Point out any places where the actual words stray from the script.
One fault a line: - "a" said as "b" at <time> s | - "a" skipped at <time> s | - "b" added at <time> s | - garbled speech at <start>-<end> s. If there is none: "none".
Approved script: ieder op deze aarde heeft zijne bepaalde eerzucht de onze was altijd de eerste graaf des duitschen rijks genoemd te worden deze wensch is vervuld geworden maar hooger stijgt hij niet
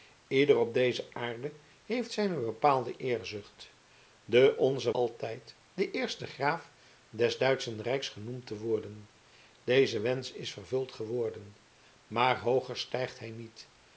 - "was" skipped at 4.9 s